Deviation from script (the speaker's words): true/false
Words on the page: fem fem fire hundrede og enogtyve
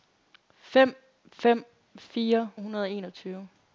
false